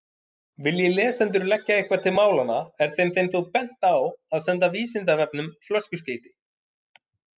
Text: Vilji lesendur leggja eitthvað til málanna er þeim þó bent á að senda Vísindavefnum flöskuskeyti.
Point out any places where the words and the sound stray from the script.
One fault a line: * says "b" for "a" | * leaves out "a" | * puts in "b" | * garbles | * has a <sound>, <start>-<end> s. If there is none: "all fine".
* puts in "þeim"